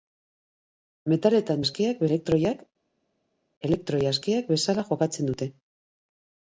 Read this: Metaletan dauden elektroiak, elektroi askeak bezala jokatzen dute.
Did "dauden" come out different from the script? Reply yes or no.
yes